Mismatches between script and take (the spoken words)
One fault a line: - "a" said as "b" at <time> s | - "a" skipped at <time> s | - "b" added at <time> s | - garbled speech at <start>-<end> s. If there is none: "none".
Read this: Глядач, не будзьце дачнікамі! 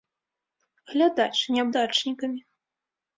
- "будзьце" skipped at 1.6 s